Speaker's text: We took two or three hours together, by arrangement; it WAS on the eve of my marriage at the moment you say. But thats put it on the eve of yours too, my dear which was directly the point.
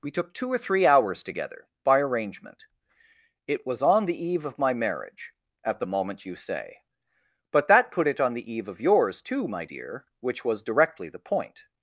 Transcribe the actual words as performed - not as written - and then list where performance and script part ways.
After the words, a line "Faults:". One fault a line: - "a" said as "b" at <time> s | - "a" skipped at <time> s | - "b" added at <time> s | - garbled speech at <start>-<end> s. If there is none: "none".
We took two or three hours together, by arrangement; it WAS on the eve of my marriage at the moment you say. But that put it on the eve of yours too, my dear which was directly the point.
Faults:
- "thats" said as "that" at 7.7 s